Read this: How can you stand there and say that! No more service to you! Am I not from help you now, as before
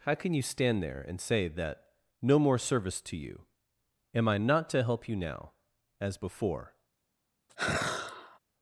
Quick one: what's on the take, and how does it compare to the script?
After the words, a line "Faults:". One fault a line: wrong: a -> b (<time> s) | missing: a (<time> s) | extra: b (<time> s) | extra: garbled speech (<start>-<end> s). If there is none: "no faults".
How can you stand there and say that! No more service to you! Am I not to help you now, as before
Faults:
wrong: from -> to (4.7 s)